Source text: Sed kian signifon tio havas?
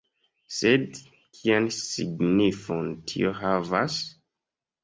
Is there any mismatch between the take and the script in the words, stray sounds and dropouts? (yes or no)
no